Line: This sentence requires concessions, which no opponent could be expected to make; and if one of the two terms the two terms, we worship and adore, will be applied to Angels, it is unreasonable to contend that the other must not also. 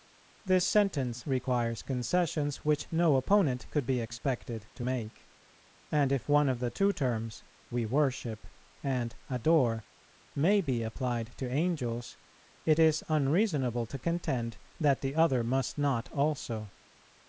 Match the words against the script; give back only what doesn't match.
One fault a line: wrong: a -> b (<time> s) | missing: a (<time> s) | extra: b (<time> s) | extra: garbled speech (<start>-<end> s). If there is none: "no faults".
missing: the two terms (7.4 s)
wrong: will -> may (10.4 s)